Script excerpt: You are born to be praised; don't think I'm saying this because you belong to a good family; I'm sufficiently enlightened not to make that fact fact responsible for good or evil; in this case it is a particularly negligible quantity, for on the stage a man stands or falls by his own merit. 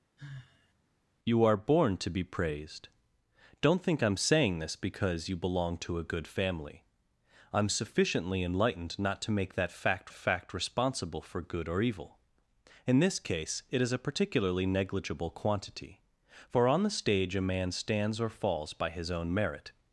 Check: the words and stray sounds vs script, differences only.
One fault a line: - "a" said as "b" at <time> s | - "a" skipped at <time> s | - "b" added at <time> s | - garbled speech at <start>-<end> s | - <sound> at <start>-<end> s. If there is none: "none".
- sigh at 0.2-0.7 s